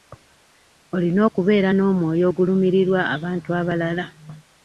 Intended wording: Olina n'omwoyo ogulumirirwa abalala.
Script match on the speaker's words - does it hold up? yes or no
no